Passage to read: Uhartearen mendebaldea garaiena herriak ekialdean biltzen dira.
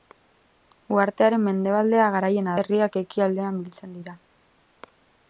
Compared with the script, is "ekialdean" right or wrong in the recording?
right